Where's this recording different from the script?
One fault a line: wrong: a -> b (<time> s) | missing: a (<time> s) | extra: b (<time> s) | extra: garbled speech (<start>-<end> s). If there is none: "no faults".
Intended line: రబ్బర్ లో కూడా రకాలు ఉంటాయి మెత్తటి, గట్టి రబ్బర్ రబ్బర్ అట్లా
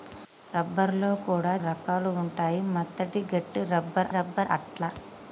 no faults